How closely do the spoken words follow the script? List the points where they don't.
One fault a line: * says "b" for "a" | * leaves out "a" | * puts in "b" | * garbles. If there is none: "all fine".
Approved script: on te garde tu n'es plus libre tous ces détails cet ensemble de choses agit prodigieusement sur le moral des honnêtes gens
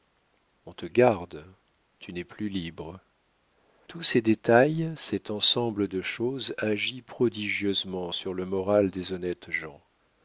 all fine